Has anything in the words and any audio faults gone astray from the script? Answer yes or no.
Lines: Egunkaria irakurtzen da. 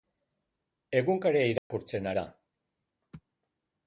yes